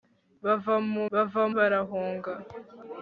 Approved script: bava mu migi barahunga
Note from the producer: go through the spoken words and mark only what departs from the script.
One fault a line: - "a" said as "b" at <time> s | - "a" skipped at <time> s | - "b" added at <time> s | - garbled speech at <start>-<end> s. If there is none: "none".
- "migi" said as "bava" at 1.1 s